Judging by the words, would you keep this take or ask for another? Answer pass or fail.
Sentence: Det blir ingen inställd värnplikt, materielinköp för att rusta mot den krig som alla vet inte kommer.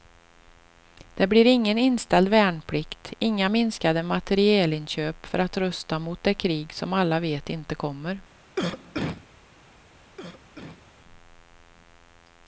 fail